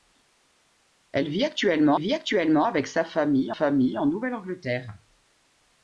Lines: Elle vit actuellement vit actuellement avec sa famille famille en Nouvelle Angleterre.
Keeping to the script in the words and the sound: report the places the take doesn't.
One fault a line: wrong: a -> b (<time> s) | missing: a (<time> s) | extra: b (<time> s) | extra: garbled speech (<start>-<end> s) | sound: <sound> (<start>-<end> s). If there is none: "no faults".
no faults